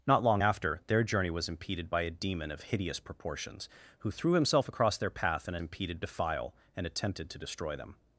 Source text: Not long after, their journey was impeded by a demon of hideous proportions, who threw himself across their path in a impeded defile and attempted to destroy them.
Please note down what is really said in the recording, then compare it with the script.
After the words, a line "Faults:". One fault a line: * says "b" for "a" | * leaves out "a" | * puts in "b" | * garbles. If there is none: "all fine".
Not long after, their journey was impeded by a demon of hideous proportions, who threw himself across their path in a impeded defile and attempted to destroy them.
Faults:
all fine